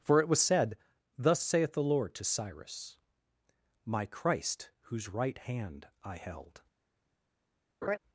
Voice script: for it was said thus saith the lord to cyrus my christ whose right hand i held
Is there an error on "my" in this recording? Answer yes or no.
no